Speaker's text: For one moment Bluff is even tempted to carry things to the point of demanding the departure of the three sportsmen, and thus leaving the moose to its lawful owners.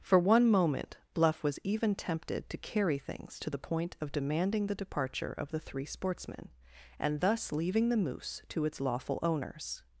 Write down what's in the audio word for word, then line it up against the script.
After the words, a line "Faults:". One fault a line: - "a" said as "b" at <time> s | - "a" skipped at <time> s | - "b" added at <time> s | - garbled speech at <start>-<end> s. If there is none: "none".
For one moment Bluff was even tempted to carry things to the point of demanding the departure of the three sportsmen, and thus leaving the moose to its lawful owners.
Faults:
- "is" said as "was" at 1.4 s